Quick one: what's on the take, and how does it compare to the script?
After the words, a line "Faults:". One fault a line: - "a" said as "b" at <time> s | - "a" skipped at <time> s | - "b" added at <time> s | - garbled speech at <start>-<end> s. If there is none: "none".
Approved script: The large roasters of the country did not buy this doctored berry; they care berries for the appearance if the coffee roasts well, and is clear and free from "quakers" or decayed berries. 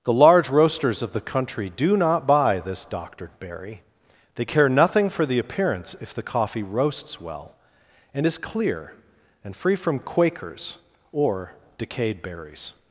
The large roasters of the country do not buy this doctored berry; they care nothing for the appearance if the coffee roasts well, and is clear and free from "quakers" or decayed berries.
Faults:
- "did" said as "do" at 1.7 s
- "berries" said as "nothing" at 4.7 s